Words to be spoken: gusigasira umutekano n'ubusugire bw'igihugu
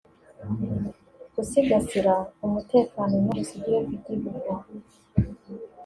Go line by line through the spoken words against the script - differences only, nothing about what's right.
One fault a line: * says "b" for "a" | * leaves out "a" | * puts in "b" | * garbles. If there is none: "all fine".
all fine